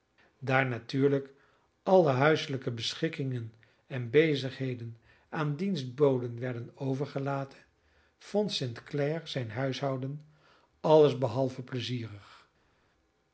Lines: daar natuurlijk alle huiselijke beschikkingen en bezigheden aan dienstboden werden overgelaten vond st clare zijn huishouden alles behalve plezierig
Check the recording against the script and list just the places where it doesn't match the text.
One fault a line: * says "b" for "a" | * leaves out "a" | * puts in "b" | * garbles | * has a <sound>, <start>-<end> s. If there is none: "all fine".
all fine